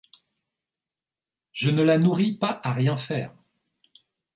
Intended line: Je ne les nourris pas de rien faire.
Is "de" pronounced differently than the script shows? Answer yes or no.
yes